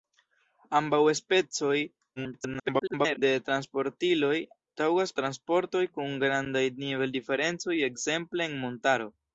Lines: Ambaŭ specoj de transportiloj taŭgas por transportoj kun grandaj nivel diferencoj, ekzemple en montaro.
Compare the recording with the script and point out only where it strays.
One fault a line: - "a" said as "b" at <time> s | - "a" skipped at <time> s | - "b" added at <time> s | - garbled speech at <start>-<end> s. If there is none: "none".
- garbled speech at 2.2-3.2 s
- "por" skipped at 5.2 s